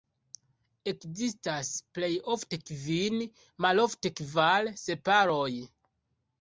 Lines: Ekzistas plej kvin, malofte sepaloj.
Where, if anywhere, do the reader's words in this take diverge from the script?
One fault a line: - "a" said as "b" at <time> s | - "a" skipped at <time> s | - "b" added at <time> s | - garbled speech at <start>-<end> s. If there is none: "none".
- "ofte" added at 2.4 s
- "kvar" added at 4.2 s